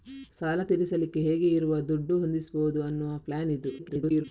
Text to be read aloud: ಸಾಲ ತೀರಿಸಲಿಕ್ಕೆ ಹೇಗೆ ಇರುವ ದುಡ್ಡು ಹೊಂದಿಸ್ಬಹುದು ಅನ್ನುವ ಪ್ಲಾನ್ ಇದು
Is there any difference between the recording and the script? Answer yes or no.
yes